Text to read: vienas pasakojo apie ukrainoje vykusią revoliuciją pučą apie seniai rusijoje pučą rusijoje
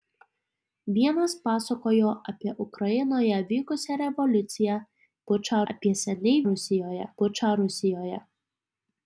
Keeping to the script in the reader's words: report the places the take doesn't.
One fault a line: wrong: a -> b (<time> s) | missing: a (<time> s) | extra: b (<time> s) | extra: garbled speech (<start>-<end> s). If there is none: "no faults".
no faults